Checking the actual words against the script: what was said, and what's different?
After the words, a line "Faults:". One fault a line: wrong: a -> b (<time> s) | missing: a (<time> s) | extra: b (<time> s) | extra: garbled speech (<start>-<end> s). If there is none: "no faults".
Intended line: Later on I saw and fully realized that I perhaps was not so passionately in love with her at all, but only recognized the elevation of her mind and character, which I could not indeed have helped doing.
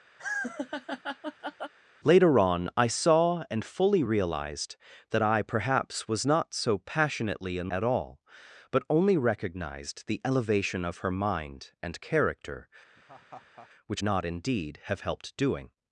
Later on I saw and fully realized that I perhaps was not so passionately in at all, but only recognized the elevation of her mind and character, which not indeed have helped doing.
Faults:
missing: love with her (7.7 s)
missing: I could (14.0 s)